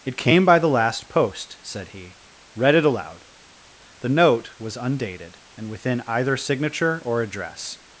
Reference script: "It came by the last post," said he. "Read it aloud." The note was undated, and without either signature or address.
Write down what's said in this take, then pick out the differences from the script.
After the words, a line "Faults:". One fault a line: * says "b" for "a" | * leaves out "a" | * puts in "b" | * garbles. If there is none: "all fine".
"It came by the last post," said he. "Read it aloud." The note was undated, and within either signature or address.
Faults:
* says "within" for "without"